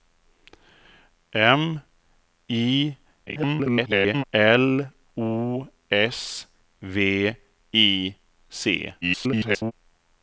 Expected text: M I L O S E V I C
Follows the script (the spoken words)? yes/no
no